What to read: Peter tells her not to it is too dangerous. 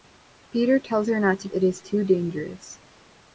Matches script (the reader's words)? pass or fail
pass